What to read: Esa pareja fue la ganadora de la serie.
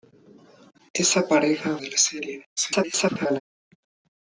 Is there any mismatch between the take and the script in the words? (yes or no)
yes